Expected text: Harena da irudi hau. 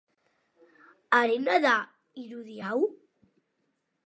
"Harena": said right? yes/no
yes